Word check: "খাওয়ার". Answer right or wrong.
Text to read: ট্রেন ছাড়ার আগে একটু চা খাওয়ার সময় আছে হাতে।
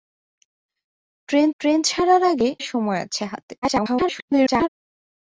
wrong